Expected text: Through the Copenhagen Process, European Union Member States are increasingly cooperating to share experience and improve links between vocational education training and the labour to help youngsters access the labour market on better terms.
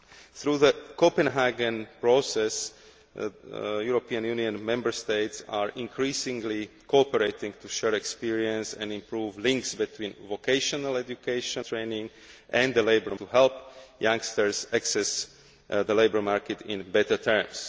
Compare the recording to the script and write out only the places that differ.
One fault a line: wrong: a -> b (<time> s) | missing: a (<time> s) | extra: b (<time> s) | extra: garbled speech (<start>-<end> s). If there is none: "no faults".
no faults